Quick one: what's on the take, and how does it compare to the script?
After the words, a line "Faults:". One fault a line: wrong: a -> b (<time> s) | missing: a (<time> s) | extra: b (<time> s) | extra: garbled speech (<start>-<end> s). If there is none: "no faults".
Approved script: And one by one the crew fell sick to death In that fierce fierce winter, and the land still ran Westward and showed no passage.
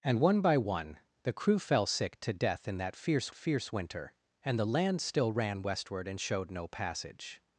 And one by one the crew fell sick to death In that fierce fierce winter, and the land still ran Westward and showed no passage.
Faults:
no faults